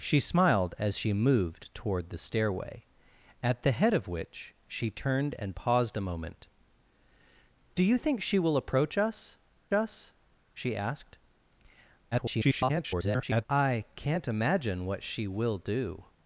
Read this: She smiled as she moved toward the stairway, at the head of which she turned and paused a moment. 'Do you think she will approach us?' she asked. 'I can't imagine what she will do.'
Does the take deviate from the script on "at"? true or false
false